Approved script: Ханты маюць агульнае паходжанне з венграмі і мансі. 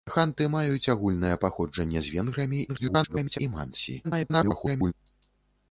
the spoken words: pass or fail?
fail